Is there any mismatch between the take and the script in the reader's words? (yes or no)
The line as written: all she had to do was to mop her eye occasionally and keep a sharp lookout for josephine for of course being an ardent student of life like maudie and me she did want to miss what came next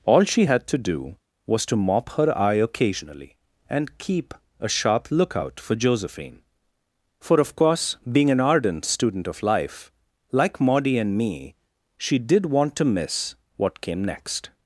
no